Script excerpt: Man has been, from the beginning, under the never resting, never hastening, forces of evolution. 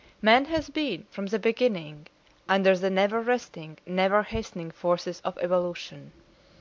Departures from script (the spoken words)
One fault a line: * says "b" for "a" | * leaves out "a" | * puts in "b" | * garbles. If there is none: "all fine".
all fine